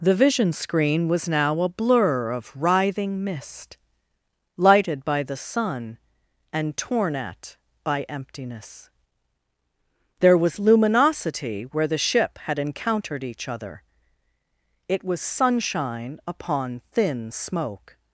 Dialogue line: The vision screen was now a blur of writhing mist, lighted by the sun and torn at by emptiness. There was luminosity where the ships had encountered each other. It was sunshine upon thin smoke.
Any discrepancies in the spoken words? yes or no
yes